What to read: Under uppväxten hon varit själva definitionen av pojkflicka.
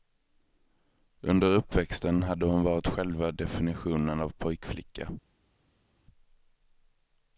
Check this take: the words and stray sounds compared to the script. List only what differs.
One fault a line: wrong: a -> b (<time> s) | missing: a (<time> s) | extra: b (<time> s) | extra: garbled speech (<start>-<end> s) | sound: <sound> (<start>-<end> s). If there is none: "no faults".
extra: hade (2.2 s)